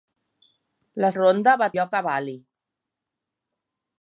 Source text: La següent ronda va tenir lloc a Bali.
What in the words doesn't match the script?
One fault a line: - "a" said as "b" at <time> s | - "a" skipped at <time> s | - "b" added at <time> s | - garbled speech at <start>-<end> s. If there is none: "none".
- "següent" skipped at 1.1 s
- "tenir" skipped at 1.7 s